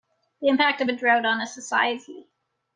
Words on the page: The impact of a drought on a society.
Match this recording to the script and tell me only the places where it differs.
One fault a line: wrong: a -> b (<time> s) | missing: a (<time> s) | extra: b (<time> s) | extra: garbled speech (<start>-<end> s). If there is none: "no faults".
no faults